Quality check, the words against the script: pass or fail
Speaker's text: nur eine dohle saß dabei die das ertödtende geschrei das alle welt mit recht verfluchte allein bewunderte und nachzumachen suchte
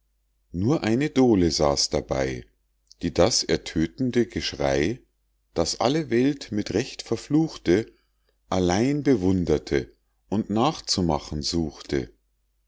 pass